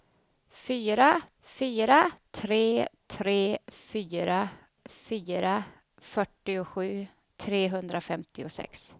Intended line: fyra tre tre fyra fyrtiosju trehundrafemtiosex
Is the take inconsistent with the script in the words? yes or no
yes